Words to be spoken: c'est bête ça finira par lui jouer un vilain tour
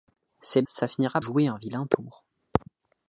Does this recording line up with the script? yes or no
no